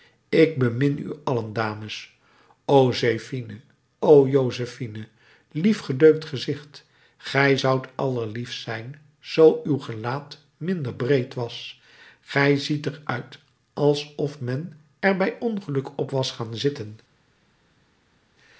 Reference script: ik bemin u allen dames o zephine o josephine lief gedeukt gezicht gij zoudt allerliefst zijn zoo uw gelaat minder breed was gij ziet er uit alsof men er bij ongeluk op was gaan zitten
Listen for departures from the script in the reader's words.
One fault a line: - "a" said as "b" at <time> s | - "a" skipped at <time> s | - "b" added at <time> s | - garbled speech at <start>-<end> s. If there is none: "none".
none